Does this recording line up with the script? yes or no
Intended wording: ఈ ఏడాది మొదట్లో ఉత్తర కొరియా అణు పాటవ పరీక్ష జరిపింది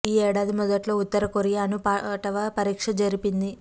yes